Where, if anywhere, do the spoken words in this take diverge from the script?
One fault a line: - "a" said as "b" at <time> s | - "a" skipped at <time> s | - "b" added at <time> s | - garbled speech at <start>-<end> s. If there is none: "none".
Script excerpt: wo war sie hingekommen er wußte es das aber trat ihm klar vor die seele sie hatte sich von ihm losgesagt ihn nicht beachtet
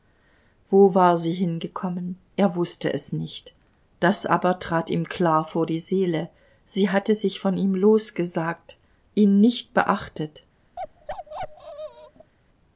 - "nicht" added at 3.1 s